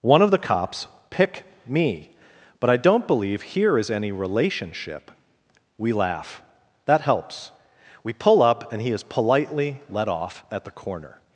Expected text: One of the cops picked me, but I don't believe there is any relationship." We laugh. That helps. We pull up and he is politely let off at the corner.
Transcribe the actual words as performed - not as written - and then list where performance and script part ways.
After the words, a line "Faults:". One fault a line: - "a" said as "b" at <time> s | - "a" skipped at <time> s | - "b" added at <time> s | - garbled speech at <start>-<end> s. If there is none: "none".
One of the cops pick me, but I don't believe here is any relationship." We laugh. That helps. We pull up and he is politely let off at the corner.
Faults:
- "picked" said as "pick" at 1.1 s
- "there" said as "here" at 3.4 s